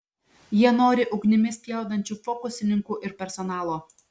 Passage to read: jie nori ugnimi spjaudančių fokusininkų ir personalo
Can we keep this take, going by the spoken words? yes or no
yes